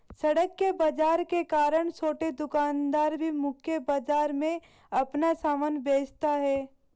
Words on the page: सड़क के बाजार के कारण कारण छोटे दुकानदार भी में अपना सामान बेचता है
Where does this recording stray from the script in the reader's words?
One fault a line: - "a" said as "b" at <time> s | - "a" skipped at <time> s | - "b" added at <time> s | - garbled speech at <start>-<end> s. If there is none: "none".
- "कारण" skipped at 1.9 s
- "मुख्य बाजार" added at 3.3 s